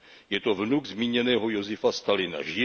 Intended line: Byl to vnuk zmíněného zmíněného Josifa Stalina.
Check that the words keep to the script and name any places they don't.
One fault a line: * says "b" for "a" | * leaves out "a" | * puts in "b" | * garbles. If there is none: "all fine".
* says "Je" for "Byl"
* leaves out "zmíněného"